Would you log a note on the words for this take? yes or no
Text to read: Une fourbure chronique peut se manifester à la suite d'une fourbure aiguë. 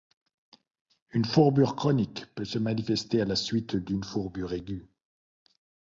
no